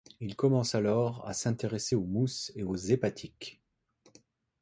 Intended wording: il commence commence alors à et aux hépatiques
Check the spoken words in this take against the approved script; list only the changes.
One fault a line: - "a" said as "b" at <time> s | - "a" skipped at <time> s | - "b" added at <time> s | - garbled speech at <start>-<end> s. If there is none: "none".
- "commence" skipped at 0.7 s
- "s'intéresser aux mousses" added at 1.4 s